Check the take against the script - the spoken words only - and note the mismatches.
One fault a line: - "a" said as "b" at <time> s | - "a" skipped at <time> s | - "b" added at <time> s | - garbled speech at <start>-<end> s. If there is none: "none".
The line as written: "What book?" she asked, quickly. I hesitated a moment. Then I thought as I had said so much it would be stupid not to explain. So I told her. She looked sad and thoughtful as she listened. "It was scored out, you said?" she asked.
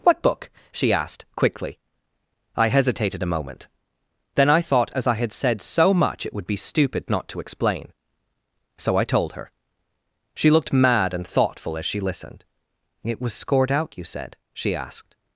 - "sad" said as "mad" at 10.7 s